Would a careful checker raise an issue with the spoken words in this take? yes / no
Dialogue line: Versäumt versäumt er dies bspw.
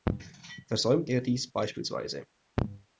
yes